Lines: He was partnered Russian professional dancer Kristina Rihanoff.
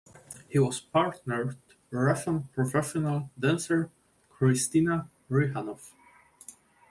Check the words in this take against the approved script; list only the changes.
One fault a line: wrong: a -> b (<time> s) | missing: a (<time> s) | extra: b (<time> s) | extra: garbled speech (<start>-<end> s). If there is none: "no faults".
no faults